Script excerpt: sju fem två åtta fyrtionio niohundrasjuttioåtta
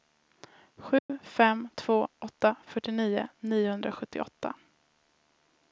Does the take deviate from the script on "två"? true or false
false